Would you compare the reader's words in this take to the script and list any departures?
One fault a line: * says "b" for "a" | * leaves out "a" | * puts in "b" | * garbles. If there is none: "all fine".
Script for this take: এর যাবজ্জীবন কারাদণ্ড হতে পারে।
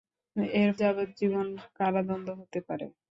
all fine